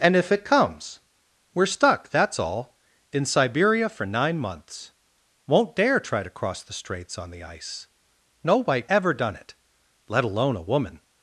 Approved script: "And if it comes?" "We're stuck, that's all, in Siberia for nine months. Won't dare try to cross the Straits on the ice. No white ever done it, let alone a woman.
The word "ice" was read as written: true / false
true